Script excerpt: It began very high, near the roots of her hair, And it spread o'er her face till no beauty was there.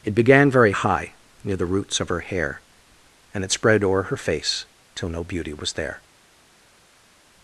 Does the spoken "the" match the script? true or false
true